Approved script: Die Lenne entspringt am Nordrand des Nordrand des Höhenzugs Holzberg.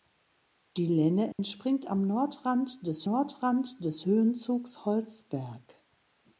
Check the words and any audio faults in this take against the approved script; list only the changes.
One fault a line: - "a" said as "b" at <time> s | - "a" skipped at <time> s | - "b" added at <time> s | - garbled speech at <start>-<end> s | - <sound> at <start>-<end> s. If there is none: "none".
- dropout at 1.3-1.4 s